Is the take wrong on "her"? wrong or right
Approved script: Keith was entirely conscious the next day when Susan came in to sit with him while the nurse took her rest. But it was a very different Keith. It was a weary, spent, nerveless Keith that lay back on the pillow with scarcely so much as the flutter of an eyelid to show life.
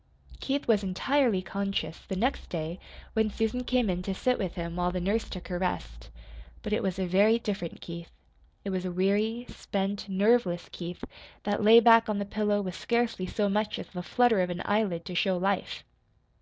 right